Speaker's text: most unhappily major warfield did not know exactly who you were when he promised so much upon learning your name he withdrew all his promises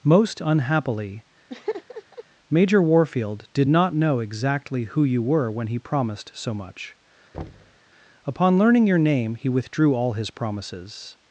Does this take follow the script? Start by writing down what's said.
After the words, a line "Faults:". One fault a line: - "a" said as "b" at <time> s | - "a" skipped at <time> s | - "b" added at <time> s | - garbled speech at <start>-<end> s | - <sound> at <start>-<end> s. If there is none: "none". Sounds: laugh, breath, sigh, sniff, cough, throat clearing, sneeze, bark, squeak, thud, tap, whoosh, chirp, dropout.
most unhappily major warfield did not know exactly who you were when he promised so much upon learning your name he withdrew all his promises
Faults:
- laugh at 1.5-2.2 s
- thud at 7.3-7.8 s